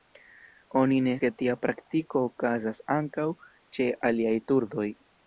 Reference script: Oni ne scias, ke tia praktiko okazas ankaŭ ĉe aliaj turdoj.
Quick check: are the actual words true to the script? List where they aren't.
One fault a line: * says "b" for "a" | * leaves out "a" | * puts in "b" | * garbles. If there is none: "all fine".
* leaves out "scias"